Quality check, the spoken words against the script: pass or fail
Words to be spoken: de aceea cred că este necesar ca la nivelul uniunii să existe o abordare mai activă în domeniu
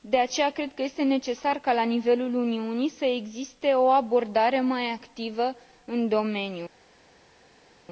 pass